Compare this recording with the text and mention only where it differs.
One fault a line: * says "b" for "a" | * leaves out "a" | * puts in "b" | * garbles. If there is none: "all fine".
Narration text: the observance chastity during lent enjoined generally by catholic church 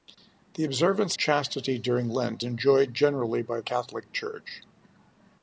all fine